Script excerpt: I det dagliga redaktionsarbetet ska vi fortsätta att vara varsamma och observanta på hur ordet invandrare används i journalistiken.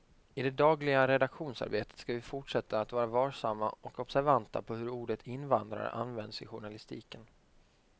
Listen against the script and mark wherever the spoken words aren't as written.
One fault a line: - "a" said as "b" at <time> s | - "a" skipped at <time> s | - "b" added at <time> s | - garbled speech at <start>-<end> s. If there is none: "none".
none